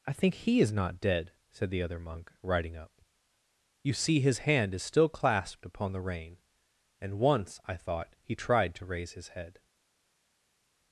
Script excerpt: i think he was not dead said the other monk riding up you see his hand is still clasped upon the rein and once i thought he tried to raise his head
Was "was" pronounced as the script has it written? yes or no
no